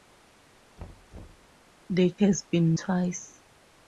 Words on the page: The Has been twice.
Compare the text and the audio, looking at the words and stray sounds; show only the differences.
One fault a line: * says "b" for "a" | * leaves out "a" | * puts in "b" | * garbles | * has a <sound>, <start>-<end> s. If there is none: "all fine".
* has a thud, 0.8-1.5 s